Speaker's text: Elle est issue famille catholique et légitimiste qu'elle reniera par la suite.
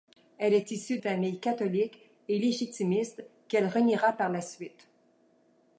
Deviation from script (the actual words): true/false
false